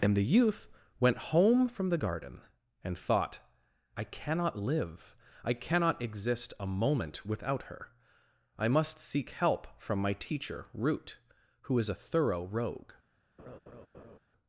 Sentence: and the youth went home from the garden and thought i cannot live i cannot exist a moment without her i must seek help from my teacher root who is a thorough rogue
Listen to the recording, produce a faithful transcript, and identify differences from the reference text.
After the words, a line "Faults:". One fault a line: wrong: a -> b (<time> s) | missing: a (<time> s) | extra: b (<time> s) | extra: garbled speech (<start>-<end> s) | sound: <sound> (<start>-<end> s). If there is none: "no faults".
and the youth went home from the garden and thought i cannot live i cannot exist a moment without her i must seek help from my teacher root who is a thorough rogue
Faults:
sound: laugh (13.4-14.2 s)